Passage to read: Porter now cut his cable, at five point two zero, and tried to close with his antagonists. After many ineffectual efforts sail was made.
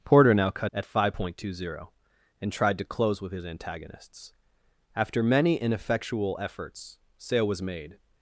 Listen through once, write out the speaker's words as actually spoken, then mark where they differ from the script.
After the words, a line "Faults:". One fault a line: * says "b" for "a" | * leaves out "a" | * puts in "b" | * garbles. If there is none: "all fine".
Porter now cut at five point two zero, and tried to close with his antagonists. After many ineffectual efforts sail was made.
Faults:
* leaves out "his cable"